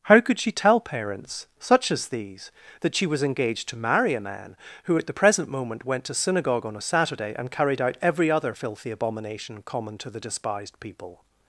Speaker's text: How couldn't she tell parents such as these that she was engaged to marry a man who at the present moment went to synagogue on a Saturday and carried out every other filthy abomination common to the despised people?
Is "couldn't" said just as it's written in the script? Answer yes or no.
no